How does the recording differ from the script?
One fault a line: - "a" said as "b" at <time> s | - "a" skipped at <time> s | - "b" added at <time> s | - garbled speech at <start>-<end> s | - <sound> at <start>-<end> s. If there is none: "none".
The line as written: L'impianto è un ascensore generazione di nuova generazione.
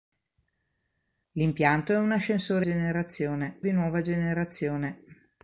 none